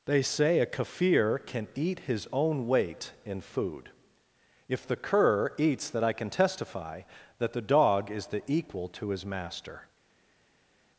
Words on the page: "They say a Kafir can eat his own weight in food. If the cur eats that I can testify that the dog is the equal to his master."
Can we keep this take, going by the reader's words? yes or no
yes